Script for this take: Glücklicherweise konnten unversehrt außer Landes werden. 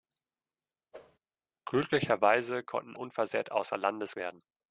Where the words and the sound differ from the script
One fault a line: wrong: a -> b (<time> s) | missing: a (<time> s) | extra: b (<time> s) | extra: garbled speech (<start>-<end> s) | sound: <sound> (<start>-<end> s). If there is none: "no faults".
sound: whoosh (0.9-1.2 s)